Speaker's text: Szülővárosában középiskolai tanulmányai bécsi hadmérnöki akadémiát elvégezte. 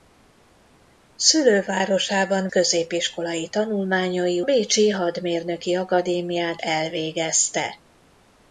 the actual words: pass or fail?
pass